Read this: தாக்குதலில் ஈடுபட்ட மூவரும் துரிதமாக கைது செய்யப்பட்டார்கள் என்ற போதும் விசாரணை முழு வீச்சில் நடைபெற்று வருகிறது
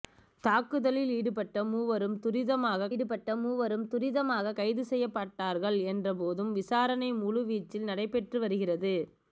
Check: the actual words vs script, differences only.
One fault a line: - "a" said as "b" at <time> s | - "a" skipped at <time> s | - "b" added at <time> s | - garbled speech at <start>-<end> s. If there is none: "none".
- "ஈடுபட்ட மூவரும் துரிதமாக" added at 2.9 s